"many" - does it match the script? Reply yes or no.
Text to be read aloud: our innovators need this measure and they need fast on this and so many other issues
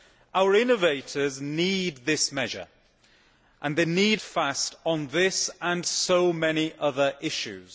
yes